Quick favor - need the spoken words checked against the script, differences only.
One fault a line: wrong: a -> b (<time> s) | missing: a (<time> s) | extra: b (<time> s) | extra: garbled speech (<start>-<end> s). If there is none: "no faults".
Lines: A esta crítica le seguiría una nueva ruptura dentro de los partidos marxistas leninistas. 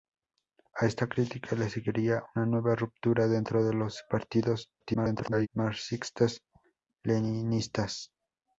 extra: garbled speech (4.8-5.5 s)